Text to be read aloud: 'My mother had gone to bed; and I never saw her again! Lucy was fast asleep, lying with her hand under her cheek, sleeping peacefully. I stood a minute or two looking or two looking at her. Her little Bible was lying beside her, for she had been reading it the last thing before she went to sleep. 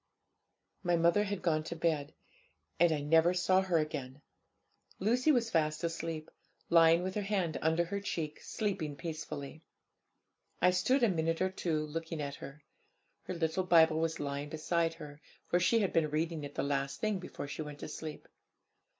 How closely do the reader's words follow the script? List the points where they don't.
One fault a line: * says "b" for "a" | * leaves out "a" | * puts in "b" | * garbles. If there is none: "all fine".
* leaves out "or two looking"